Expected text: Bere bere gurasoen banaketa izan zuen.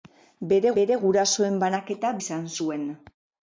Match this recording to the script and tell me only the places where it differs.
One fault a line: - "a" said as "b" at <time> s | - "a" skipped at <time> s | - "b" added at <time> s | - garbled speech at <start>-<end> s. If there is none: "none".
none